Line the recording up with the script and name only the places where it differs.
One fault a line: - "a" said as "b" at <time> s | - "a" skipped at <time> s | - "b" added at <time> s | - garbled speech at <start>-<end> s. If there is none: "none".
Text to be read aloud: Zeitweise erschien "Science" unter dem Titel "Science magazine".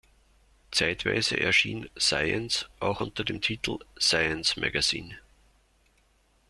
- "auch" added at 2.8 s